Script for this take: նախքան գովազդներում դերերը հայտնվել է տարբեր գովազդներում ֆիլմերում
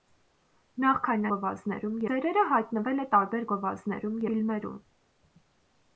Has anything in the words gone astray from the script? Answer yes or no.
no